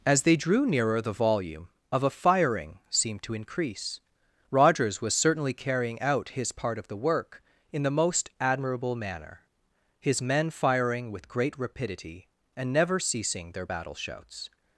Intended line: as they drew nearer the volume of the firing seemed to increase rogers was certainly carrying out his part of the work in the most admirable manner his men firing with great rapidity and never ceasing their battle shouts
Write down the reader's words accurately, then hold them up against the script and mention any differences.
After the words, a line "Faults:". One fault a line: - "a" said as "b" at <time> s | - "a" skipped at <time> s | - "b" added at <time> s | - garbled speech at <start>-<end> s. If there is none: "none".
as they drew nearer the volume of a firing seemed to increase rogers was certainly carrying out his part of the work in the most admirable manner his men firing with great rapidity and never ceasing their battle shouts
Faults:
- "the" said as "a" at 2.0 s